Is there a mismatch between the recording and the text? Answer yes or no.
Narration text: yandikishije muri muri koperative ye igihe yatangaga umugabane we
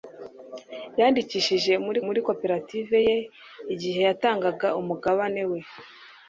no